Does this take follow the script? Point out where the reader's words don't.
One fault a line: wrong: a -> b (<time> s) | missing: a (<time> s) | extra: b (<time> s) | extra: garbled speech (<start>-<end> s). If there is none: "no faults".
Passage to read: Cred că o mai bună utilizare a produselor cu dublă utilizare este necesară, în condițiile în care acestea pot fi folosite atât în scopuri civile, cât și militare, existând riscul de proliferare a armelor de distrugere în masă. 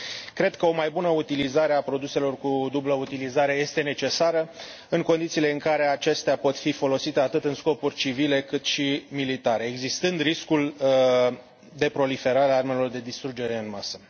no faults